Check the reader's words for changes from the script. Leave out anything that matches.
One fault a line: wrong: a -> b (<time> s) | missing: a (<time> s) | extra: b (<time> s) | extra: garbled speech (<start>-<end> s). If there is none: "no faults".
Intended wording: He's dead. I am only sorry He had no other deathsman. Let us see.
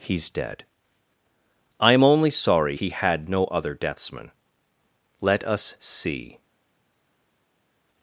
no faults